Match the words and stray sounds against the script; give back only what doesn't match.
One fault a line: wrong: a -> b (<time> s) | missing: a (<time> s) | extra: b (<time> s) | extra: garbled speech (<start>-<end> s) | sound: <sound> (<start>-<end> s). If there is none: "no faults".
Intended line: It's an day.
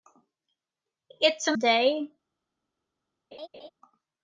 sound: laugh (3.3-3.7 s)